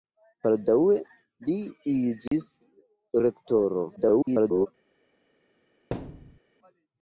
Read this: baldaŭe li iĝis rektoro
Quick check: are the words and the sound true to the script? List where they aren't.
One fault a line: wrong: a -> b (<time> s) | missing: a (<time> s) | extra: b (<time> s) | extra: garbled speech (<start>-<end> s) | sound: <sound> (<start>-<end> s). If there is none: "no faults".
sound: dropout (2.3-2.3 s)
extra: garbled speech (4.0-4.7 s)
sound: thud (5.9-6.4 s)